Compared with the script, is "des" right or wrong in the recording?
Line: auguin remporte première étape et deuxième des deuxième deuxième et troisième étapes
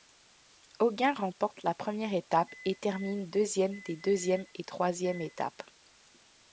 right